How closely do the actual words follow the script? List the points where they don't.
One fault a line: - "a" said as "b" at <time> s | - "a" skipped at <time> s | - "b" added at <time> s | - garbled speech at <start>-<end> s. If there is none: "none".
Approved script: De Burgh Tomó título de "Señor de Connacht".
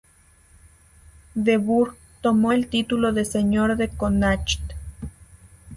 - "el" added at 2.5 s